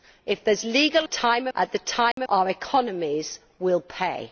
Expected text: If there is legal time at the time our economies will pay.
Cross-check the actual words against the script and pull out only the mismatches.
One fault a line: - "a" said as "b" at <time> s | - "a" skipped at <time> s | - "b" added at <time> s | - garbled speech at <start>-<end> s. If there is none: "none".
none